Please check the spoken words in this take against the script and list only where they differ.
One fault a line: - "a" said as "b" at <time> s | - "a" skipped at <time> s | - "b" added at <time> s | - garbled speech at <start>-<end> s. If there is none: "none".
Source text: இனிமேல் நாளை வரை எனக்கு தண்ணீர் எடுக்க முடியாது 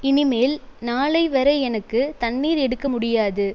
none